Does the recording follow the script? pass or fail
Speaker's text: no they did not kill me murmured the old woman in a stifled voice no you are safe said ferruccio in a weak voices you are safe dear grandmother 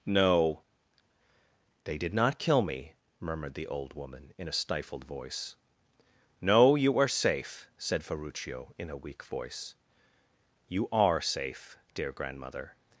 fail